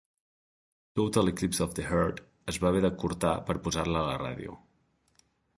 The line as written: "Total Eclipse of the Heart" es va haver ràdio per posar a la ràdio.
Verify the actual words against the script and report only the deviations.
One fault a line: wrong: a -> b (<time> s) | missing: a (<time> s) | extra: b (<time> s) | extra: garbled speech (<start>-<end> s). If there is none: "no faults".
wrong: ràdio -> d'acurtar (2.9 s)
extra: la (3.9 s)